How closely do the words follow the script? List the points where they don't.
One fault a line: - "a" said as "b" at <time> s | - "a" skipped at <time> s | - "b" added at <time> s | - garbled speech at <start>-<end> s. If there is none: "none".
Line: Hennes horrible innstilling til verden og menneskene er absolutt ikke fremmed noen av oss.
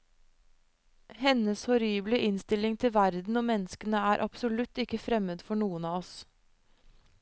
- "for" added at 5.5 s